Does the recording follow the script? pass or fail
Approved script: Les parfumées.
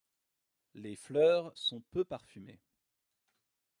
fail